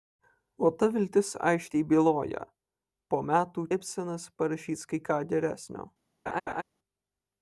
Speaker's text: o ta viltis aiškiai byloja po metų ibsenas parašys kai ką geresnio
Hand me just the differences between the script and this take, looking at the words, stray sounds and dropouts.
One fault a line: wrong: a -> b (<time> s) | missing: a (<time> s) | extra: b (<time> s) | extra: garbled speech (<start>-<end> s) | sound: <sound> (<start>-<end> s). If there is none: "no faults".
sound: laugh (6.3-6.6 s)